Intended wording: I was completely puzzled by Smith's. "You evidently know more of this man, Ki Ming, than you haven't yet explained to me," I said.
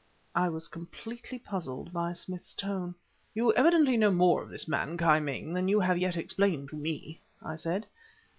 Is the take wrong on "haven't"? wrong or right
wrong